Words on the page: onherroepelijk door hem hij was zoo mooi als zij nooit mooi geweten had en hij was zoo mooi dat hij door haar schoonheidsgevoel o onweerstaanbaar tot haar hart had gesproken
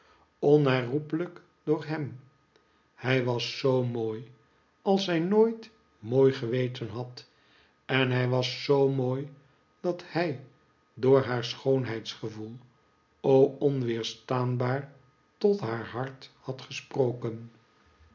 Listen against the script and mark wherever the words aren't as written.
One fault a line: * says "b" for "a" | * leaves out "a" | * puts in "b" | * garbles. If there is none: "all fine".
all fine